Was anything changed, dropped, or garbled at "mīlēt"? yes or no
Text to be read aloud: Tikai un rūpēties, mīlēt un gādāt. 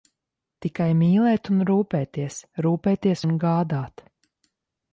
yes